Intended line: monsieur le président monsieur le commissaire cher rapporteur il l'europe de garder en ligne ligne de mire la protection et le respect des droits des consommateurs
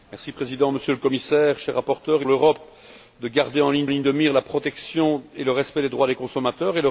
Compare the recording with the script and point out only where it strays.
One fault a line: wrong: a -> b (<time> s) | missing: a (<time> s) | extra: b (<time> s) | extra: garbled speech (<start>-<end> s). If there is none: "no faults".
no faults